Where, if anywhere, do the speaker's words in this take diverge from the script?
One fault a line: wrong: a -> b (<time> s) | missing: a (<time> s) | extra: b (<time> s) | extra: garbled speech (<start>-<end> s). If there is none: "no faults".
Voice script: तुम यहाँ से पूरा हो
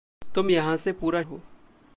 no faults